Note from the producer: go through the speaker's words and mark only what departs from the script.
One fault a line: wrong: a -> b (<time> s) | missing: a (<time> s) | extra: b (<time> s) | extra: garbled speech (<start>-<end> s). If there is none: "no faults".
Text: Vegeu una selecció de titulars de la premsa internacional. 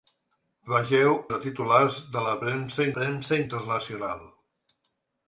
missing: una selecció (1.1 s)
extra: premsa (3.0 s)